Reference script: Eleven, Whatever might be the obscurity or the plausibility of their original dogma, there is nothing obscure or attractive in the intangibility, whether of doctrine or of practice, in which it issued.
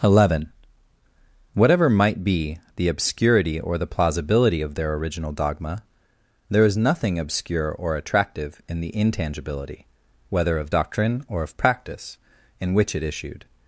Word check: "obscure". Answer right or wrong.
right